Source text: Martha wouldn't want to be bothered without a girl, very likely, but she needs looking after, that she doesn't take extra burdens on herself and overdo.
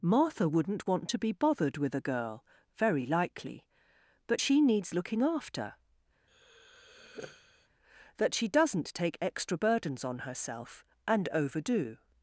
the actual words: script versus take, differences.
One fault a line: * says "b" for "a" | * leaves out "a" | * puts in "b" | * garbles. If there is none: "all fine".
* says "with" for "without"